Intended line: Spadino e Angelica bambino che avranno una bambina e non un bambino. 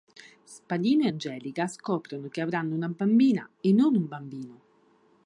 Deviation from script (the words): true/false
true